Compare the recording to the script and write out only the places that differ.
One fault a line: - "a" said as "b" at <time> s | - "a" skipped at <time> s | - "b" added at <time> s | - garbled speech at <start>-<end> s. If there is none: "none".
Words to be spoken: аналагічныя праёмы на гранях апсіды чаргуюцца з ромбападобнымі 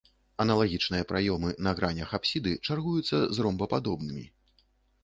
none